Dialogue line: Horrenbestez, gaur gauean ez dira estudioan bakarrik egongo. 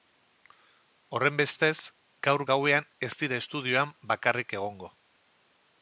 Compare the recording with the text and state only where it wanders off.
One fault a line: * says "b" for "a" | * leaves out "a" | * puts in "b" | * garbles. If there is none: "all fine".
all fine